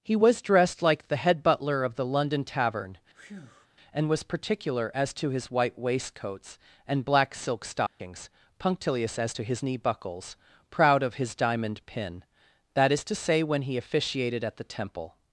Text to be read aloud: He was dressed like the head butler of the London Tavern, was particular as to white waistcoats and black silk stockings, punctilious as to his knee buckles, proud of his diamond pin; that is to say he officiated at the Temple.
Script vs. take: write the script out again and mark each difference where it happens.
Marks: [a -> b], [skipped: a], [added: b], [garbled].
He was dressed like the head butler of the London Tavern, [added: and] was particular as to [added: his] white waistcoats and black silk stockings, punctilious as to his knee buckles, proud of his diamond pin; that is to say [added: when] he officiated at the Temple.